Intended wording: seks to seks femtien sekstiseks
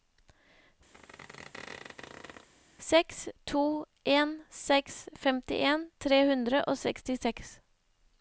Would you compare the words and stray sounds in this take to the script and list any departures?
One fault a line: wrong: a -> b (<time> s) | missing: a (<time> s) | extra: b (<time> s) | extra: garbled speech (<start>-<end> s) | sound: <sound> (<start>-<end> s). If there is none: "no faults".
sound: squeak (0.9-2.5 s)
extra: en (4.2 s)
extra: tre hundre og (6.1 s)